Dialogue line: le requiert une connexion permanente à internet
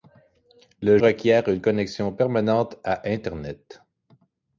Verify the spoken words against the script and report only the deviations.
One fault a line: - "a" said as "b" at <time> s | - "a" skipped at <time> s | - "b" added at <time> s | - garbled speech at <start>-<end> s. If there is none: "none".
none